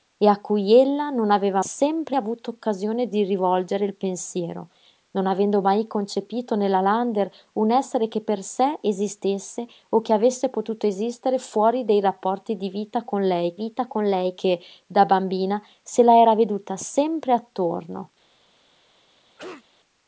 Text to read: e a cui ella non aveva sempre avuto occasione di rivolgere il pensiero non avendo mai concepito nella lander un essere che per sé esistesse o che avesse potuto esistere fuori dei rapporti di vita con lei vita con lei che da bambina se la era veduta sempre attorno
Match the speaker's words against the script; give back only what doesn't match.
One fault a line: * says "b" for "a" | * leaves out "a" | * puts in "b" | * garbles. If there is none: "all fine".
all fine